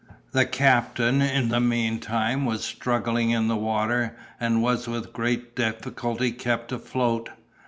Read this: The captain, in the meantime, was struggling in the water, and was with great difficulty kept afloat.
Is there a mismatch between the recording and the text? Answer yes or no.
no